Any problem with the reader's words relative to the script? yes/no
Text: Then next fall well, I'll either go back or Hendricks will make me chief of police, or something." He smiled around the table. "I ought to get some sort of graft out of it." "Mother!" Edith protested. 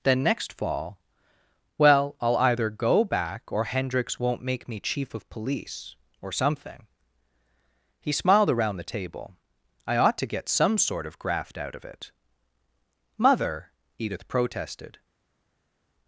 yes